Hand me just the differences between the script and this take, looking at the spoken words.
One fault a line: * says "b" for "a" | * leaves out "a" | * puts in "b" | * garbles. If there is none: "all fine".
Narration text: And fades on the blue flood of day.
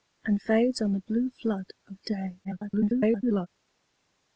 * garbles